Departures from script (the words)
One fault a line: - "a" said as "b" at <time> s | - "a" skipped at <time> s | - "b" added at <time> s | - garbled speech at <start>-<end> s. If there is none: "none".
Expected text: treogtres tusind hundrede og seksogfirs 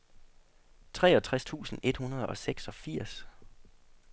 - "et" added at 1.8 s